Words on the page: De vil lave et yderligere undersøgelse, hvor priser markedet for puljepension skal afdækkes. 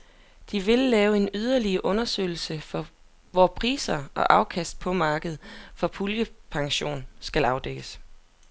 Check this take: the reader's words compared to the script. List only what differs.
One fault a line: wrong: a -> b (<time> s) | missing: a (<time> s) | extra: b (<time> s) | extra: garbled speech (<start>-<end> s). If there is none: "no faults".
wrong: et -> en (1.2 s)
extra: og afkast på (4.2 s)